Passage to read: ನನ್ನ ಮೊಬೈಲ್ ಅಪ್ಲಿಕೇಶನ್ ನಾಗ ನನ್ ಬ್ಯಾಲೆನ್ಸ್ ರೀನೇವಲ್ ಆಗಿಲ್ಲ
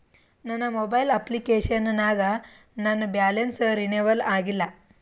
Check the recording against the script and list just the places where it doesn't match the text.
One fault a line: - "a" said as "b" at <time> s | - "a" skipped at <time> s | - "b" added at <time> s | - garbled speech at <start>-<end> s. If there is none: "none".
none